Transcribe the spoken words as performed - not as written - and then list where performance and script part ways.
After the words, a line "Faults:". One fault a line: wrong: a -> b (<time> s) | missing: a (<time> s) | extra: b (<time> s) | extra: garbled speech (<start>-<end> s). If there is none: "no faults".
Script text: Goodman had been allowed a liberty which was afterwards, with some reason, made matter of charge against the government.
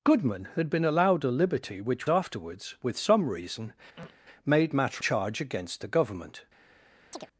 Goodman had been allowed a liberty which afterwards, with some reason, made matter charge against the government.
Faults:
missing: was (2.1 s)
missing: of (5.0 s)